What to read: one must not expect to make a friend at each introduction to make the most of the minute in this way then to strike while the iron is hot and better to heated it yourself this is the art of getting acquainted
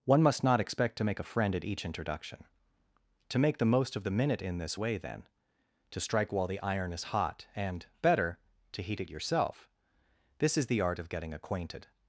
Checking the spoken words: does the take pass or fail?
fail